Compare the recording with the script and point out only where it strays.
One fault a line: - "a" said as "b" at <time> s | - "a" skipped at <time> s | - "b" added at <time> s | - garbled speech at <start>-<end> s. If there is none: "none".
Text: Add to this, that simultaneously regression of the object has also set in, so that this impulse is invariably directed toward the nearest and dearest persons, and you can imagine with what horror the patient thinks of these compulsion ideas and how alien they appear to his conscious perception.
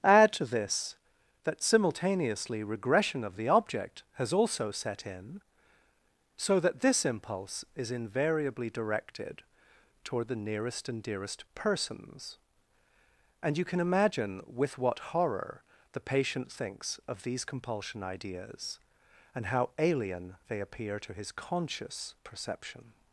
none